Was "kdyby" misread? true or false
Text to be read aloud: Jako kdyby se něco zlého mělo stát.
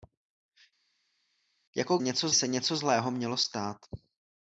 true